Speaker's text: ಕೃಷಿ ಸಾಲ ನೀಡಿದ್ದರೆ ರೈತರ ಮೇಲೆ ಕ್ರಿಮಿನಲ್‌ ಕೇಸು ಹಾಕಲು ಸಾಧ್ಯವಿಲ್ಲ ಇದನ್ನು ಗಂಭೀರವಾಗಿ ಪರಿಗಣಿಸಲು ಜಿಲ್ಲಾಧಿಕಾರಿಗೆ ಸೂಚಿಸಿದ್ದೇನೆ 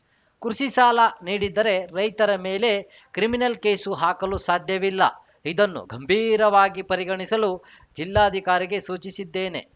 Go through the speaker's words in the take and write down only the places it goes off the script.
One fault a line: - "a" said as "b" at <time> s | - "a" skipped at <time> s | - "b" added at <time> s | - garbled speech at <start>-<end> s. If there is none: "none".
none